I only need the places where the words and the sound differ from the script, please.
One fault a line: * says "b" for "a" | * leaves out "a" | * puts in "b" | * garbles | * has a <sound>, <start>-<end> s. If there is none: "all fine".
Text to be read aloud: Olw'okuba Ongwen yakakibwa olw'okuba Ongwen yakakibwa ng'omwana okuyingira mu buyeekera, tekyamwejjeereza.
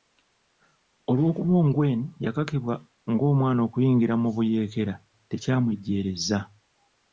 * leaves out "olw'okuba Ongwen yakakibwa"